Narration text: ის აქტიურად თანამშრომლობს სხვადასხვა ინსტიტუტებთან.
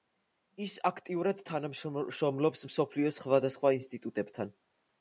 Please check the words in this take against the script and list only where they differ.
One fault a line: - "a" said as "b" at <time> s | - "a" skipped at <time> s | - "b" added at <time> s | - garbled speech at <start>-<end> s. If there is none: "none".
- "მსოფლიოს" added at 2.7 s